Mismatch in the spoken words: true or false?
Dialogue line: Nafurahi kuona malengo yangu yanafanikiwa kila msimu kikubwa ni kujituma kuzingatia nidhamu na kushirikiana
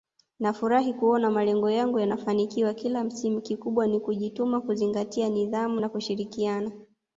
false